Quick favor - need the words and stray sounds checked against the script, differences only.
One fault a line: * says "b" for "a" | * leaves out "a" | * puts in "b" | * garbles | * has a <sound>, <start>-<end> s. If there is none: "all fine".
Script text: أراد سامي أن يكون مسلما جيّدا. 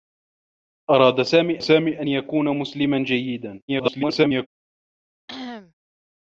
* puts in "سامي"
* garbles
* has a cough, 5.3-5.7 s